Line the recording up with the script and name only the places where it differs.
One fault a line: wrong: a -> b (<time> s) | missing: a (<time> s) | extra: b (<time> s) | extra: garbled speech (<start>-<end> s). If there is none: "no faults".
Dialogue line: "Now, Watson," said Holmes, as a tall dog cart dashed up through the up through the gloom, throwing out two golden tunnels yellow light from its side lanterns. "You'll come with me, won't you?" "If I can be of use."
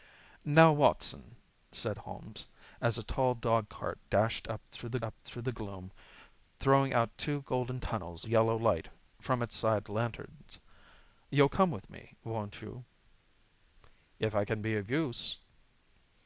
no faults